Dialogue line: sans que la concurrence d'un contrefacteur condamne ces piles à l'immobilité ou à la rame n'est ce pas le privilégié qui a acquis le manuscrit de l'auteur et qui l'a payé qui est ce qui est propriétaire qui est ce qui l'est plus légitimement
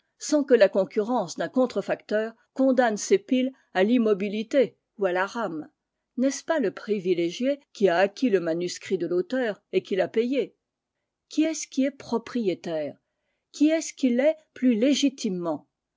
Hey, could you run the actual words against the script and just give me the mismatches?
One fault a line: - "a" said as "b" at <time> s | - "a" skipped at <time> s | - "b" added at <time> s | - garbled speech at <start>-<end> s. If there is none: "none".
none